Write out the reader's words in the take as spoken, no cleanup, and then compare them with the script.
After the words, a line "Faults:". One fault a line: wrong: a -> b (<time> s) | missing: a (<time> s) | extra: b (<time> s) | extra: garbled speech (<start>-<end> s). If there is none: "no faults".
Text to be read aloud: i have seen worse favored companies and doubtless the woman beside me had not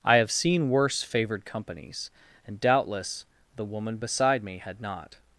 i have seen worse favored companies and doubtless the woman beside me had not
Faults:
no faults